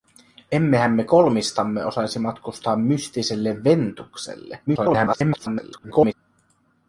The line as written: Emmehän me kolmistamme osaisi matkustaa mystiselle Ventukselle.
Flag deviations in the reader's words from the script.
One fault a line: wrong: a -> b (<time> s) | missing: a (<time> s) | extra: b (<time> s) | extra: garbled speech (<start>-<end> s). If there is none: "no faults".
extra: garbled speech (4.7-6.1 s)